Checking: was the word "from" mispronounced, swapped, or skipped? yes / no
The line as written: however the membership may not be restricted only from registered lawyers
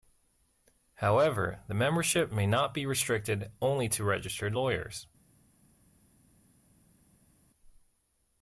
yes